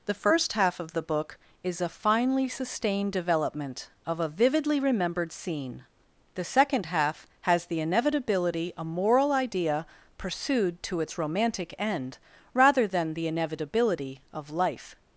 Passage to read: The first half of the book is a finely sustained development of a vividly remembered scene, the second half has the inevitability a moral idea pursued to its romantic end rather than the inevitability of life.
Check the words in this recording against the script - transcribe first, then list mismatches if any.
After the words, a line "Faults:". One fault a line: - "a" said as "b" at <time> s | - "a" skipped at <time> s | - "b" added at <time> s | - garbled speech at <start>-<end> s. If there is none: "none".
The first half of the book is a finely sustained development of a vividly remembered scene, the second half has the inevitability a moral idea pursued to its romantic end rather than the inevitability of life.
Faults:
none